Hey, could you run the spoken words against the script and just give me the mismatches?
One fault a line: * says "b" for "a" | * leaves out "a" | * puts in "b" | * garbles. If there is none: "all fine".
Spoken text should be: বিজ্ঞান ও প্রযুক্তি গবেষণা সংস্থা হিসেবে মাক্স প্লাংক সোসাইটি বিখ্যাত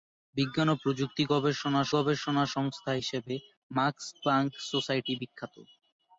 * puts in "গবেষণা"